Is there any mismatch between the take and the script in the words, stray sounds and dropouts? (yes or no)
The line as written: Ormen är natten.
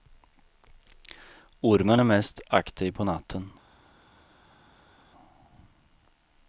yes